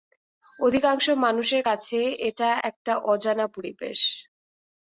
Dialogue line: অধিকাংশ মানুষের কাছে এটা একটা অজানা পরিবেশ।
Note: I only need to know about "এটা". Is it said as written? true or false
true